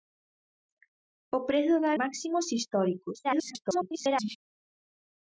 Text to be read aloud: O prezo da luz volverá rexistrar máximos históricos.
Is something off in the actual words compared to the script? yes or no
yes